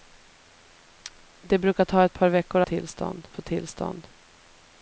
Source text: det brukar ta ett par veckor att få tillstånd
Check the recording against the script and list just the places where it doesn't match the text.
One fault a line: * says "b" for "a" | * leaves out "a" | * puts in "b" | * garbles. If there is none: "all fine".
* says "tillstånd" for "att"